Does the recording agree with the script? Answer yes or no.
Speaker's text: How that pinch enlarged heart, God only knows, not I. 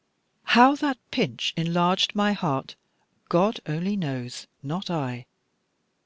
no